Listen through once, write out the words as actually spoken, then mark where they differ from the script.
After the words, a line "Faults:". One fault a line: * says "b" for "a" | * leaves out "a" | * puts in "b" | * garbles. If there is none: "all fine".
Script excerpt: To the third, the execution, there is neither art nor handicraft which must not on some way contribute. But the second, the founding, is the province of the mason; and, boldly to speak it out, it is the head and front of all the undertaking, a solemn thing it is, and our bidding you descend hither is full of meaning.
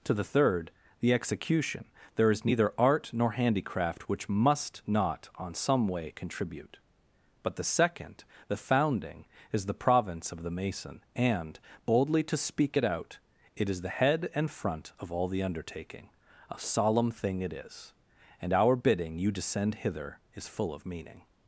To the third, the execution, there is neither art nor handicraft which must not on some way contribute. But the second, the founding, is the province of the mason; and, boldly to speak it out, it is the head and front of all the undertaking, a solemn thing it is, and our bidding you descend hither is full of meaning.
Faults:
all fine